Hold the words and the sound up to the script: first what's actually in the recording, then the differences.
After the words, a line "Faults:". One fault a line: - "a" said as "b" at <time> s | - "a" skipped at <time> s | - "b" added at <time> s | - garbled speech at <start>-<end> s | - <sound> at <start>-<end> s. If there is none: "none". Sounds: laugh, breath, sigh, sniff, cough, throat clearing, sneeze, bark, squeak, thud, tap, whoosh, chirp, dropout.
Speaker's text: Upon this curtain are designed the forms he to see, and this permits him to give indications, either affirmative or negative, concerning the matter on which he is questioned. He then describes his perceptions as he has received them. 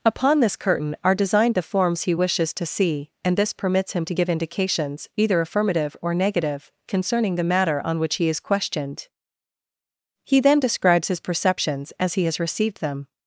Upon this curtain are designed the forms he wishes to see, and this permits him to give indications, either affirmative or negative, concerning the matter on which he is questioned. He then describes his perceptions as he has received them.
Faults:
- "wishes" added at 2.1 s